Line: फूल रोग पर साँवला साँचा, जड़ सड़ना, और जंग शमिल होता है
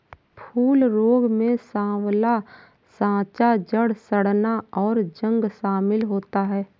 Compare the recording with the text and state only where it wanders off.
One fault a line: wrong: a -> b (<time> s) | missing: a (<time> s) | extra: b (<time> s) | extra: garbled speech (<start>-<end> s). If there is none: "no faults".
wrong: पर -> में (1.3 s)